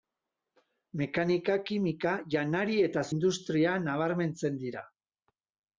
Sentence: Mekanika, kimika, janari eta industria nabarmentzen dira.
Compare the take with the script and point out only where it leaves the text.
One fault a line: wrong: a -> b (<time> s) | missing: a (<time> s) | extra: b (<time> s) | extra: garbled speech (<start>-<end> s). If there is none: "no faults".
no faults